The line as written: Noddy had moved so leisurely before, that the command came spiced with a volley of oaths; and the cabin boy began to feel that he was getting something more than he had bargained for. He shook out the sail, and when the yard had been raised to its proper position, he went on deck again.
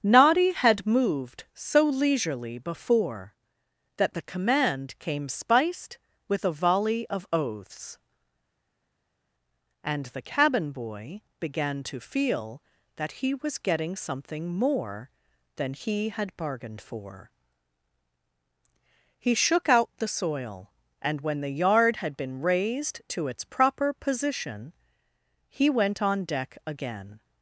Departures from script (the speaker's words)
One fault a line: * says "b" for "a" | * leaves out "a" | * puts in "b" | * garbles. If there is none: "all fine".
* says "soil" for "sail"